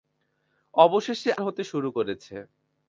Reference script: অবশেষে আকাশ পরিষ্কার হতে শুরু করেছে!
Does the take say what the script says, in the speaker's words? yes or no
no